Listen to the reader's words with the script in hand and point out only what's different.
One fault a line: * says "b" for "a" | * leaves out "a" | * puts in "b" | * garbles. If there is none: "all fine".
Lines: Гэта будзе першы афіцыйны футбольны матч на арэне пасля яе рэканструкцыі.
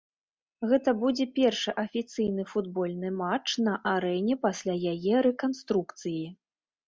all fine